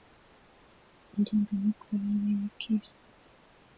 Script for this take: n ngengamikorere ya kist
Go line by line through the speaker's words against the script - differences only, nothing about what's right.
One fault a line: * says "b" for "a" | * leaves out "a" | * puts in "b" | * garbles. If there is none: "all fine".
all fine